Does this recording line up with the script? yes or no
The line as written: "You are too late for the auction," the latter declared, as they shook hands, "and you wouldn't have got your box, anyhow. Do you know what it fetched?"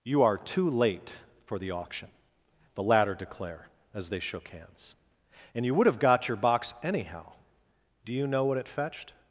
no